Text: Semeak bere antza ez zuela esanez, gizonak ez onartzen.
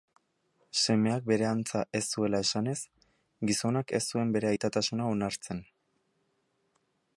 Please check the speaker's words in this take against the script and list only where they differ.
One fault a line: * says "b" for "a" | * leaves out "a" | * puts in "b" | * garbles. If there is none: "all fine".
* puts in "zuen bere aitatasuna"